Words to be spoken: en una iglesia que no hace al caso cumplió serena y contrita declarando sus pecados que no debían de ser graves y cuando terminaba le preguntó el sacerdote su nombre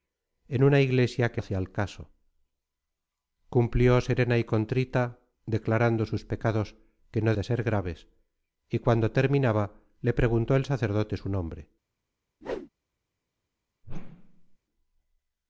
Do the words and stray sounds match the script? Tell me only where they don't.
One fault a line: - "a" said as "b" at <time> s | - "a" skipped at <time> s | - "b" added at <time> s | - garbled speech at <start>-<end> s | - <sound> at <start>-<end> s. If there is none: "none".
- "no" skipped at 1.4 s
- "debían" skipped at 7.4 s
- whoosh at 12.4-12.7 s
- whoosh at 13.8-14.6 s